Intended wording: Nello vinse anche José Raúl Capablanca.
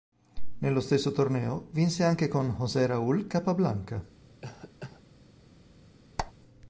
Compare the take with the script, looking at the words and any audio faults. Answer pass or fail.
fail